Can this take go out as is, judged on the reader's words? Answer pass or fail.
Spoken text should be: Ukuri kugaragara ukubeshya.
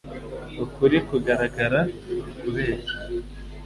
pass